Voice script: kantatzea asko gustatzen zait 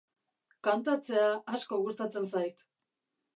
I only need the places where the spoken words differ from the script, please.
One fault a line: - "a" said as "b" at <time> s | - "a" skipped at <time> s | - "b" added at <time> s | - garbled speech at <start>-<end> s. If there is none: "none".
none